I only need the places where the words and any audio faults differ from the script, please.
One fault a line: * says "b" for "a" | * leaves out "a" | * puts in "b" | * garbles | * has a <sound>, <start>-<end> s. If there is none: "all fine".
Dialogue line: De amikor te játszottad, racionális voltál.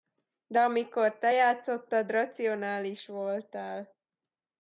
all fine